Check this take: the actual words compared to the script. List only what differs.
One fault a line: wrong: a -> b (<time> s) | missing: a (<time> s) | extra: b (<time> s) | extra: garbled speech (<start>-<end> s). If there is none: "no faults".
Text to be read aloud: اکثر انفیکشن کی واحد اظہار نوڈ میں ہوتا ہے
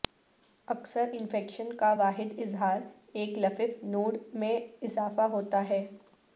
wrong: کی -> کا (1.8 s)
extra: ایک لفف (3.1 s)
extra: اضافہ (4.8 s)